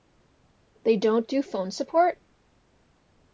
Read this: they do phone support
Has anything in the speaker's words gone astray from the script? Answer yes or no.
yes